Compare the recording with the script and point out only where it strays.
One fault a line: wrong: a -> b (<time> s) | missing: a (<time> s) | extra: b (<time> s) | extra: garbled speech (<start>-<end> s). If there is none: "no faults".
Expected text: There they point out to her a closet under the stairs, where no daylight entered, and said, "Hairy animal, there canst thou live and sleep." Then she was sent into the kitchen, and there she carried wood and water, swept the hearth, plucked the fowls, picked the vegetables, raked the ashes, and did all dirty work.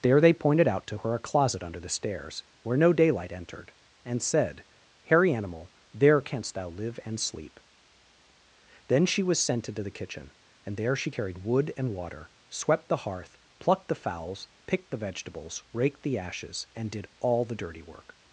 wrong: point -> pointed (0.3 s)
extra: the (17.4 s)